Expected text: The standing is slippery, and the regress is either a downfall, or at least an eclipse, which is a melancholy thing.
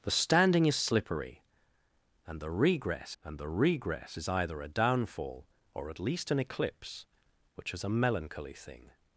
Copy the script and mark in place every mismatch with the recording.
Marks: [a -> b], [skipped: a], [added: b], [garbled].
The standing is slippery, and the regress [added: and the regress] is either a downfall, or at least an eclipse, which is a melancholy thing.